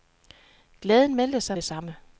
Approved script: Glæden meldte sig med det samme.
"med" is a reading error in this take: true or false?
true